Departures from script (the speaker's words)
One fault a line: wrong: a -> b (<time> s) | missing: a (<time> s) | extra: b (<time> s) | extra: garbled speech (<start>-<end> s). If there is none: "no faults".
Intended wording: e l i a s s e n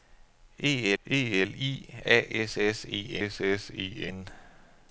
extra: e (1.0 s)
extra: s s e (3.3 s)